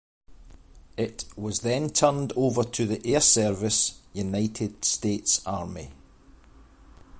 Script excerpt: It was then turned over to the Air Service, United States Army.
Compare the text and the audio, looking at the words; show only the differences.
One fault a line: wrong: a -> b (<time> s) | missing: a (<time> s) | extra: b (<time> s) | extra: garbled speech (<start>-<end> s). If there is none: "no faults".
no faults